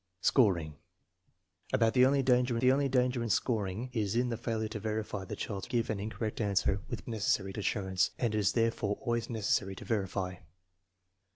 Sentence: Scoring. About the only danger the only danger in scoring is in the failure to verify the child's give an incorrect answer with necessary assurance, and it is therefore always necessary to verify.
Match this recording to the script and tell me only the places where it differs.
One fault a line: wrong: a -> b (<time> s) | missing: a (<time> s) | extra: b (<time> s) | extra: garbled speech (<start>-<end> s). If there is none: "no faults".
no faults